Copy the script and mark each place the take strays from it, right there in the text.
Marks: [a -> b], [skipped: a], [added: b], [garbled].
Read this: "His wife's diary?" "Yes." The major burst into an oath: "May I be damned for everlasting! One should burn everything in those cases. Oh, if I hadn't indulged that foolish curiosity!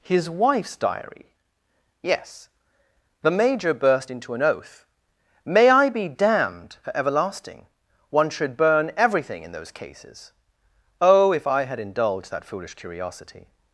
"His wife's diary?" "Yes." The major burst into an oath: "May I be damned for everlasting! One should burn everything in those cases. Oh, if I [hadn't -> had] indulged that foolish curiosity!